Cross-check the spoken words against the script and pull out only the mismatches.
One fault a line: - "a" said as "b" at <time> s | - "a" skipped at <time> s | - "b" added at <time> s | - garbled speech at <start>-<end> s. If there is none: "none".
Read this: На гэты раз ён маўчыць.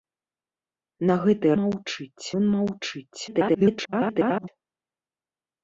- "раз" said as "маўчыць" at 1.6 s
- garbled speech at 3.3-4.5 s